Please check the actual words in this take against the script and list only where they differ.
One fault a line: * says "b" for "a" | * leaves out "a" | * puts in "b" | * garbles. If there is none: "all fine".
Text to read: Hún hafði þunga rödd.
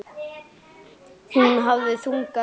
all fine